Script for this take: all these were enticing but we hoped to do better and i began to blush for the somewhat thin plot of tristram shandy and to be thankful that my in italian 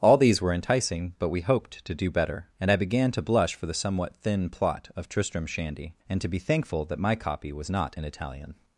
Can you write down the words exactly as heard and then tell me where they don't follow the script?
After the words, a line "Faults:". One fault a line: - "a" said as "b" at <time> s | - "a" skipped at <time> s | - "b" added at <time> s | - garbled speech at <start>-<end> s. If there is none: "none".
all these were enticing but we hoped to do better and i began to blush for the somewhat thin plot of tristram shandy and to be thankful that my copy was not in italian
Faults:
- "copy was not" added at 7.2 s